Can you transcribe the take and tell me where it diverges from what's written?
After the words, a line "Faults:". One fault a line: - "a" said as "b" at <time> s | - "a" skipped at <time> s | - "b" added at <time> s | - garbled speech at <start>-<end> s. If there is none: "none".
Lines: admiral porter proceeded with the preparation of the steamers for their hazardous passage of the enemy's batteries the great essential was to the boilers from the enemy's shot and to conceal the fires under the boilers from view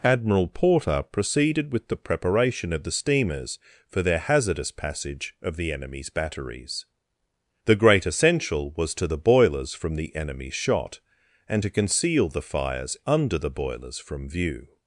admiral porter proceeded with the preparation of the steamers for their hazardous passage of the enemy's batteries the great essential was to the boilers from the enemy's shot and to conceal the fires under the boilers from view
Faults:
none